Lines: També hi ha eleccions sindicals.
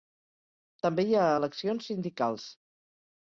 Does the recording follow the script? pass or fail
pass